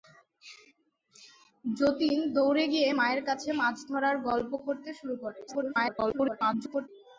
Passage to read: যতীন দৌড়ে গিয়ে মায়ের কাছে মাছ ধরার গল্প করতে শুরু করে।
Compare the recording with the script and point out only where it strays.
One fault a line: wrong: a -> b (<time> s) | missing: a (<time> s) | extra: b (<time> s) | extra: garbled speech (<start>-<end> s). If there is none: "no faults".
extra: garbled speech (5.5-6.9 s)